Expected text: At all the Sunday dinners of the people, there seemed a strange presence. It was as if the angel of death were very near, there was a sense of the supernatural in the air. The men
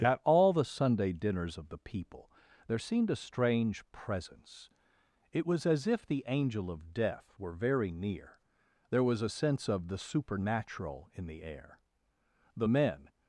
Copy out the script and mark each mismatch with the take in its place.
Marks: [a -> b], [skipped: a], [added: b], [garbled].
At all the Sunday dinners of the people, there seemed a strange presence. It was as if the angel of death were very near, there was a sense of the supernatural in the air. The men